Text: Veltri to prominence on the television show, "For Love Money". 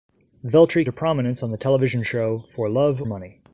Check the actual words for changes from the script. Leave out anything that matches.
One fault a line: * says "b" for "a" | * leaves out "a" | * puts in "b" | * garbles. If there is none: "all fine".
all fine